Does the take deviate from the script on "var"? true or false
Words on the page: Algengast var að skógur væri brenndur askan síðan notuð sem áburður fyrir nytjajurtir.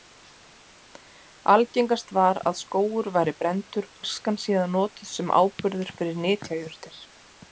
false